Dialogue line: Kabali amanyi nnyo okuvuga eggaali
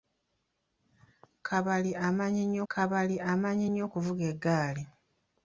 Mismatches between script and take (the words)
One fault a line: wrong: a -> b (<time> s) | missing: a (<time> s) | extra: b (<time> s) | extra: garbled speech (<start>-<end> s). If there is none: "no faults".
extra: kabali amanyi nnyo (2.7 s)